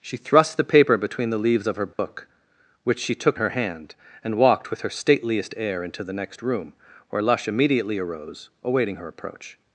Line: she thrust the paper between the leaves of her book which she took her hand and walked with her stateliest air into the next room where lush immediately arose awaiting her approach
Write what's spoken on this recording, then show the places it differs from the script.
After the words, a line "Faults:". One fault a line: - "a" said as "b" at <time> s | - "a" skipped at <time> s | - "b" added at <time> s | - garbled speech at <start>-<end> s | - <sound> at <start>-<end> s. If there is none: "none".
she thrust the paper between the leaves of her book which she took her hand and walked with her stateliest air into the next room where lush immediately arose awaiting her approach
Faults:
- dropout at 1.9-2.0 s